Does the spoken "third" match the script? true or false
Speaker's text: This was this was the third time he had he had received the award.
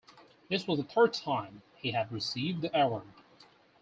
true